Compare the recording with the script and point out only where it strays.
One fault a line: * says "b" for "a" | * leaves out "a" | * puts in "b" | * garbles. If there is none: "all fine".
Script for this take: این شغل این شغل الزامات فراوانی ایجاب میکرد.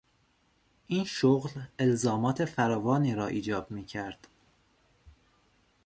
* leaves out "این شغل"
* puts in "را"